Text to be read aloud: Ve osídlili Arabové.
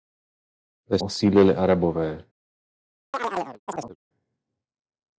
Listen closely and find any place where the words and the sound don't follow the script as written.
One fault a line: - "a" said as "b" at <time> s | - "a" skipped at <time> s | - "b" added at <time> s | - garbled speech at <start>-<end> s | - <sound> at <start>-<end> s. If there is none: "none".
- chirp at 3.1-4.0 s